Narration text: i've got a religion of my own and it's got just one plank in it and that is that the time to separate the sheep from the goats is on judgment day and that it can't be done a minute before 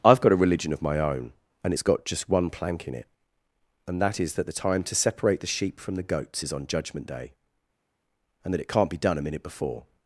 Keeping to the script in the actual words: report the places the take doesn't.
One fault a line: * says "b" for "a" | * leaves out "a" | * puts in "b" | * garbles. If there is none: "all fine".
all fine